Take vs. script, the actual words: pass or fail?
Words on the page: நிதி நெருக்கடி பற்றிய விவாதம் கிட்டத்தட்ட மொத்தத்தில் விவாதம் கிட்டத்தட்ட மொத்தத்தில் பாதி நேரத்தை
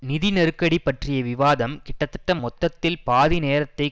fail